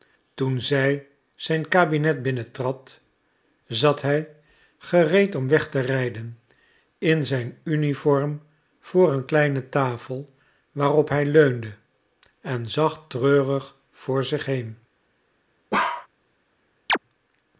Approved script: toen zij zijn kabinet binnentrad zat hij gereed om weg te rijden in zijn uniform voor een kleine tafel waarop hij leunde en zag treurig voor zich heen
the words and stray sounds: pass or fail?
fail